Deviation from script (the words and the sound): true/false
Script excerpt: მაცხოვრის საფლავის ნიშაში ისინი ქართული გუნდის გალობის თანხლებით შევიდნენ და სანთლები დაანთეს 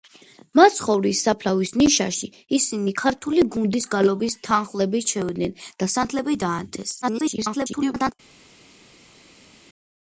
true